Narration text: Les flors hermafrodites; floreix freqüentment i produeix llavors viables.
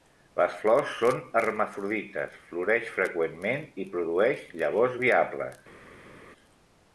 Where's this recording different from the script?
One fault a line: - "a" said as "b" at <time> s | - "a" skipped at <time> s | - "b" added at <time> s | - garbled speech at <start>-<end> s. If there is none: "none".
- "són" added at 1.0 s